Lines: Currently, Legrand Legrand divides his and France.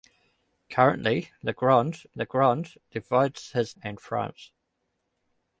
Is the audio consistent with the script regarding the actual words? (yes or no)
yes